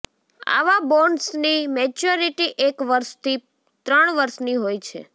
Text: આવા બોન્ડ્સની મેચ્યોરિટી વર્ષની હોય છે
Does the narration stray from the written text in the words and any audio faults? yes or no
yes